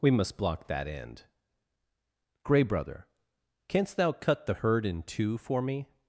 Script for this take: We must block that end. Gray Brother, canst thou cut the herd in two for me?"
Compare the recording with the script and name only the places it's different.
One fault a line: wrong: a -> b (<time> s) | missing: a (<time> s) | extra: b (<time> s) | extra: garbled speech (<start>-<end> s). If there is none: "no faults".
no faults